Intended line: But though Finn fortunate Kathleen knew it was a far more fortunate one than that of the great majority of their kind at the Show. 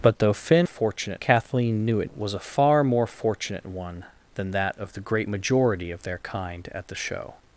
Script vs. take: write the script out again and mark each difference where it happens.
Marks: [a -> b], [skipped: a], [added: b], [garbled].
But though Finn fortunate Kathleen knew it was a far more fortunate one than that of the great majority of their kind at the Show.